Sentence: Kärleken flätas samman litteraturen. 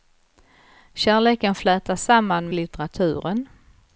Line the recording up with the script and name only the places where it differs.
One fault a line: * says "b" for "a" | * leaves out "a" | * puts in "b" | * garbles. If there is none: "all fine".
all fine